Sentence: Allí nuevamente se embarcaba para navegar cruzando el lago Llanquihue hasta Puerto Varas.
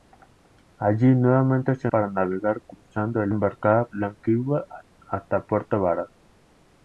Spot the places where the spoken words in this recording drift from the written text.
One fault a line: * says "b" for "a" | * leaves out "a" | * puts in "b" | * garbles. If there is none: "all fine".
* leaves out "embarcaba"
* says "embarcaba" for "lago"